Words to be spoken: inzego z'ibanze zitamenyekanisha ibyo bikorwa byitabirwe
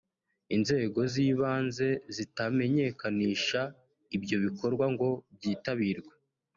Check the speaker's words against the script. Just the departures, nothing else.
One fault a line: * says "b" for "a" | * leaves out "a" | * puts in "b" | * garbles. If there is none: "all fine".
* puts in "ngo"